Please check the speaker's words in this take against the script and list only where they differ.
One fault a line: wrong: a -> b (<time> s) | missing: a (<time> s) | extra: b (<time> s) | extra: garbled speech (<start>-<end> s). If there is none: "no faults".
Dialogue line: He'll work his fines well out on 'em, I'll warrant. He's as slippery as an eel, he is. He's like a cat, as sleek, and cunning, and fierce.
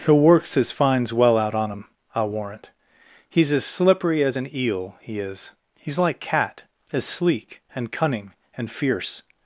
wrong: work -> works (0.2 s)
missing: a (6.2 s)